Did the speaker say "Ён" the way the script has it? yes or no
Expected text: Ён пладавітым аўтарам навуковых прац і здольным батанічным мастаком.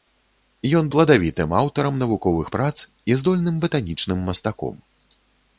yes